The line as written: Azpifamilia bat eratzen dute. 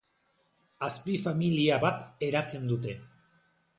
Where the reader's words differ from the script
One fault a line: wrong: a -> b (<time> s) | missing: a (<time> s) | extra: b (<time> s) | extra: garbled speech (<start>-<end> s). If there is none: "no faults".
no faults